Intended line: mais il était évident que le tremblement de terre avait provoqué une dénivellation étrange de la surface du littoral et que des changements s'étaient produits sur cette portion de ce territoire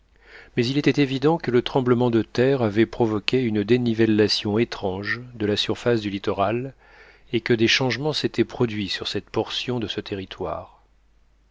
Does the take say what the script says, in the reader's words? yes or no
yes